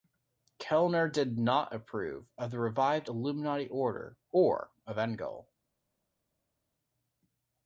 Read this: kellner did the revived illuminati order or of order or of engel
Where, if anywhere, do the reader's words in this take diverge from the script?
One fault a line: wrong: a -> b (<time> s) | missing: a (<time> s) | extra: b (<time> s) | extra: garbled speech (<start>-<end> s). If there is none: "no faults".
extra: not approve of (1.4 s)
missing: order or of (5.0 s)